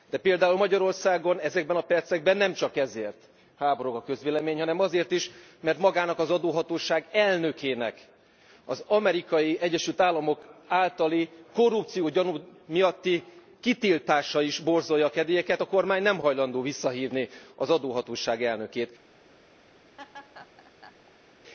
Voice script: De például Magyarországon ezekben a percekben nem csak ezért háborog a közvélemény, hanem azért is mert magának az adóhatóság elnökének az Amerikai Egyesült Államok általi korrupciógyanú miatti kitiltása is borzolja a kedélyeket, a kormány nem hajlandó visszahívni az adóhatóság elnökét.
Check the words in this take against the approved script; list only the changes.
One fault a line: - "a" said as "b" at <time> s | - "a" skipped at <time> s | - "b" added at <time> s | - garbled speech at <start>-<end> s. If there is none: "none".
none